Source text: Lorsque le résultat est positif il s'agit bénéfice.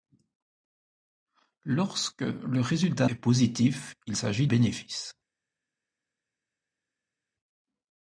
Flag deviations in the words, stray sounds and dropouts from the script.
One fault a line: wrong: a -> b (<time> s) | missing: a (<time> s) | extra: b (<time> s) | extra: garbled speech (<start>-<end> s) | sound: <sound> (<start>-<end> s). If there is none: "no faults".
no faults